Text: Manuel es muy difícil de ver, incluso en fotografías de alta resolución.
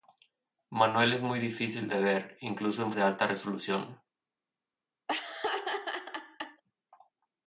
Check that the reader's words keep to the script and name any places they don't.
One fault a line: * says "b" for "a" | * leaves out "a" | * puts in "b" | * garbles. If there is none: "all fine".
* leaves out "fotografías"